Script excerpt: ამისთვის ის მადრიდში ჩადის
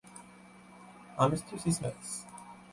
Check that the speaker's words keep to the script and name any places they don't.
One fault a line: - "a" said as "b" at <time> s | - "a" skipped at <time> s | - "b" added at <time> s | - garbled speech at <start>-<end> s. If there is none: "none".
- "მადრიდში" skipped at 1.8 s